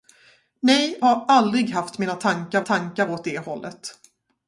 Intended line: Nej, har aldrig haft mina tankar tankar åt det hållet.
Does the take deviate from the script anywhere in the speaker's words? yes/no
no